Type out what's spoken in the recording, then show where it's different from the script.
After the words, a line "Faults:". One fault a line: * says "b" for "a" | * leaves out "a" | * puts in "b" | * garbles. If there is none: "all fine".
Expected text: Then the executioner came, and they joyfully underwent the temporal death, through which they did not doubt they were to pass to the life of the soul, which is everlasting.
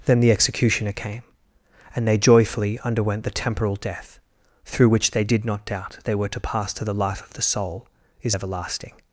Then the executioner came, and they joyfully underwent the temporal death, through which they did not doubt they were to pass to the life of the soul, is everlasting.
Faults:
* leaves out "which"